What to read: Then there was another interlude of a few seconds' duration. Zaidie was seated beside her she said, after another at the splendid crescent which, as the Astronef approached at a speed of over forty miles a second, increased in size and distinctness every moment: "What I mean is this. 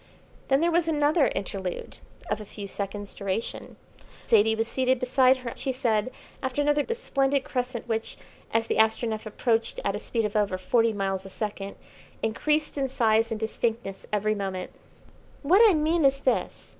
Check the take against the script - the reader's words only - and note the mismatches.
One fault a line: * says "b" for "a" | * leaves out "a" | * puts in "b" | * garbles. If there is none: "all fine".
all fine